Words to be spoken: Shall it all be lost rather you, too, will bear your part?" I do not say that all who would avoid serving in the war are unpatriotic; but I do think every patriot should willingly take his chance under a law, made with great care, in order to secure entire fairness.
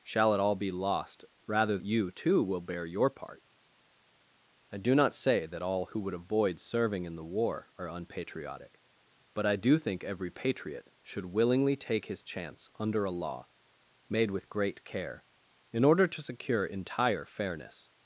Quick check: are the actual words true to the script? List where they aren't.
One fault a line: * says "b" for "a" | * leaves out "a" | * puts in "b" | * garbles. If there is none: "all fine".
all fine